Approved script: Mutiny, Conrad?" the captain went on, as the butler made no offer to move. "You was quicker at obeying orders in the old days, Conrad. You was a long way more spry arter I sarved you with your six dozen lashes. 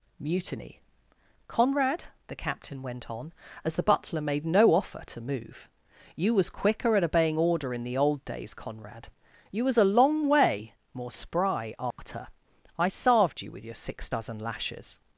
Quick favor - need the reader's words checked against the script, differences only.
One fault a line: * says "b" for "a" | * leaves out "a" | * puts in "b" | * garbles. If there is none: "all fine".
* says "order" for "orders"